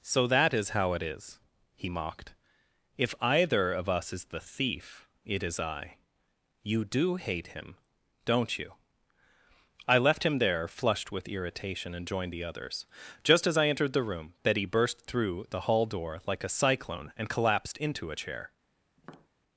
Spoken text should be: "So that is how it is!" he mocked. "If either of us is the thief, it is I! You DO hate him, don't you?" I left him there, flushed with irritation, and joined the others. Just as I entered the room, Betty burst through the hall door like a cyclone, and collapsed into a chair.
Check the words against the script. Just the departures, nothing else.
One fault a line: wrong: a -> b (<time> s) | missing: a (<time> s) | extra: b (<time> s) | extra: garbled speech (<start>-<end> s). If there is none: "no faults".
no faults